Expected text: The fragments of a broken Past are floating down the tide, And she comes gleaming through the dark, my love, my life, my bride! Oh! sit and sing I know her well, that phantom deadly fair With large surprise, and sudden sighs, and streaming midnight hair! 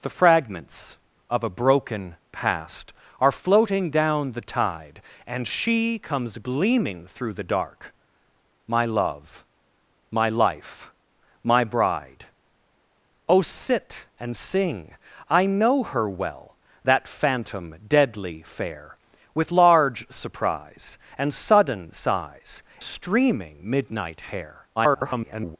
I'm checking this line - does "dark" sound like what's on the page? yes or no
yes